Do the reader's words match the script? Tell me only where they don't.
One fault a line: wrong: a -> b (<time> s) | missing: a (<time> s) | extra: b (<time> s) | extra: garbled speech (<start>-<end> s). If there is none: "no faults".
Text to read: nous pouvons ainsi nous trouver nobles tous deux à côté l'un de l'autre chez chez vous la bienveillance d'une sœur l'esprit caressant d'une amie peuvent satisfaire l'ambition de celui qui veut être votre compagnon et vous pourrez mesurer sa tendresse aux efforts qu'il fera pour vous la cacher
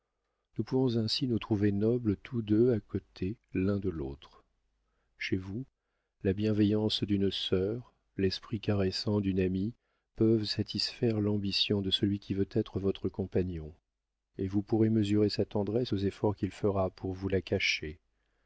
missing: chez (5.4 s)